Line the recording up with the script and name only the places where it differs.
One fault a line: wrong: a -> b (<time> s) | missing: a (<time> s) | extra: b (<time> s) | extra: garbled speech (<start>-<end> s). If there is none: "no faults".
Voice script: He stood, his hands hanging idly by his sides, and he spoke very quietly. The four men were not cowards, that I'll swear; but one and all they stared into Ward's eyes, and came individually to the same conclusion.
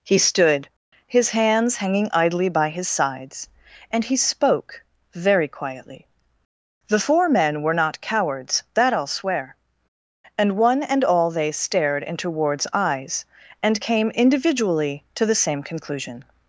wrong: but -> and (10.4 s)